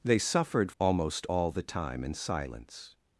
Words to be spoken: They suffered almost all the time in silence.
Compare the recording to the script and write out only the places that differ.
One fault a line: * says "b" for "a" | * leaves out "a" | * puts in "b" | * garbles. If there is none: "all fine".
all fine